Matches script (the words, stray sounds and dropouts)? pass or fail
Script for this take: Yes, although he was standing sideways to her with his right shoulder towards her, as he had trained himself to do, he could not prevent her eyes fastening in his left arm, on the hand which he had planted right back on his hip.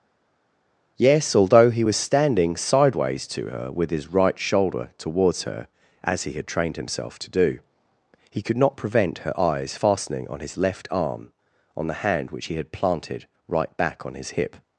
fail